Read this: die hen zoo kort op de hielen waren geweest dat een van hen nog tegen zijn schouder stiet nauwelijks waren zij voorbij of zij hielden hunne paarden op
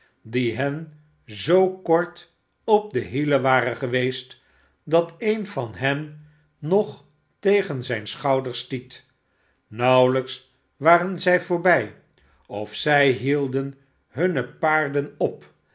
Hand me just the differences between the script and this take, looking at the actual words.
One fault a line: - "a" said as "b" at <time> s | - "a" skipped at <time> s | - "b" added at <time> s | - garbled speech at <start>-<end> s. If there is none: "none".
none